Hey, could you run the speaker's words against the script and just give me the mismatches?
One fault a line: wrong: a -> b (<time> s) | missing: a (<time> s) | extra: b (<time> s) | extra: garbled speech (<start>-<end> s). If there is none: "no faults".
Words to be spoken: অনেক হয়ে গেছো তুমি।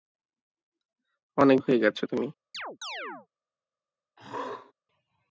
no faults